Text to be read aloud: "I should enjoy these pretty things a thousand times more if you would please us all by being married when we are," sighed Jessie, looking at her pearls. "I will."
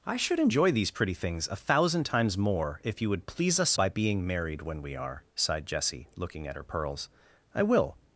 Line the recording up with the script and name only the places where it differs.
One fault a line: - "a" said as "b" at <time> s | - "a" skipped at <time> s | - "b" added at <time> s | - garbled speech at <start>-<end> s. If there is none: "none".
- "all" skipped at 3.8 s